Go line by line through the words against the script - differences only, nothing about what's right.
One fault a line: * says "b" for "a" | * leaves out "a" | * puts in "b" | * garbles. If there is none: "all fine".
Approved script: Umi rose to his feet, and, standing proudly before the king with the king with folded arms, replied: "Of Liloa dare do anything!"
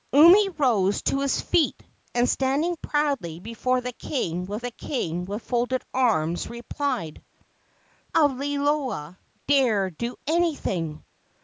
all fine